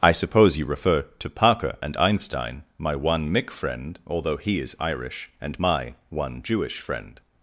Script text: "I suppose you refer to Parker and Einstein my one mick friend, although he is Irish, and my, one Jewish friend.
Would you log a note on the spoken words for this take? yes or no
no